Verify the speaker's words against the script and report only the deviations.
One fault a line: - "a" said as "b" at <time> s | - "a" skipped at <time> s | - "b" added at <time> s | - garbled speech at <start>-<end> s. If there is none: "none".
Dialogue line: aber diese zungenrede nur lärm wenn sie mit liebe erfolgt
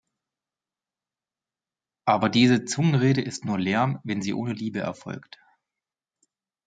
- "ist" added at 3.2 s
- "mit" said as "ohne" at 4.3 s